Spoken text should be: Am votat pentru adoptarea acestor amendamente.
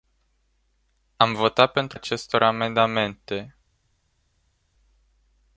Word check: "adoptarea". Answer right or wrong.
wrong